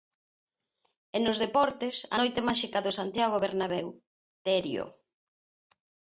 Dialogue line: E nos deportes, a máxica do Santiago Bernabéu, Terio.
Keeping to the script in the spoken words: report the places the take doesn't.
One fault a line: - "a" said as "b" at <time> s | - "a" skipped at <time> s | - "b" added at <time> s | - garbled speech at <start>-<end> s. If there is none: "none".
- "noite" added at 2.2 s